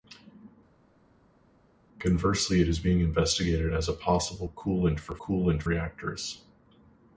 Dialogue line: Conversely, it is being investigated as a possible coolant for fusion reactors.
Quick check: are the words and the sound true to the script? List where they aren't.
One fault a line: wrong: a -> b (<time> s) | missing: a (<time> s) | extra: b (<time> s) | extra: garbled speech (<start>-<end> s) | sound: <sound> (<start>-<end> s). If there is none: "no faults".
wrong: fusion -> coolant (5.2 s)